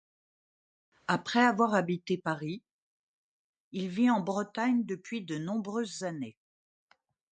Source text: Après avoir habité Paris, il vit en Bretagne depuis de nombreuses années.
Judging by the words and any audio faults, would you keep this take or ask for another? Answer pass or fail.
pass